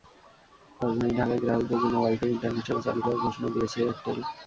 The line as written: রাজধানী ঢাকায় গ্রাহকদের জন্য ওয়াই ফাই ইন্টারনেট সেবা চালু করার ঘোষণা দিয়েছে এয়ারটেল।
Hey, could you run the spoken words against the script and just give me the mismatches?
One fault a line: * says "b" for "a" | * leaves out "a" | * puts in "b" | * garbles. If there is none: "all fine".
all fine